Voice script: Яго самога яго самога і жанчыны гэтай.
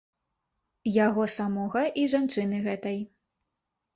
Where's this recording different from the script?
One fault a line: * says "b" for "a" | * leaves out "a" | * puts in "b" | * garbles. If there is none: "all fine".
* leaves out "яго самога"